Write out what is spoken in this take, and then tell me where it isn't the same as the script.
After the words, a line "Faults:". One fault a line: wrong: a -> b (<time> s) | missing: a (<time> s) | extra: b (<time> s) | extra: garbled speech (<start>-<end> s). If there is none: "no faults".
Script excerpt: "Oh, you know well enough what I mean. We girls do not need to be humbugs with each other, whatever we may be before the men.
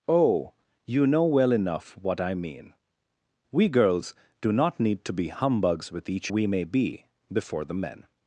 "Oh, you know well enough what I mean. We girls do not need to be humbugs with each we may be before the men.
Faults:
missing: other whatever (6.3 s)